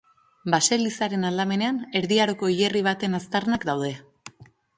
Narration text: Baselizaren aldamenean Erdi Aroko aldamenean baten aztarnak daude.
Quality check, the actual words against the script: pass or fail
fail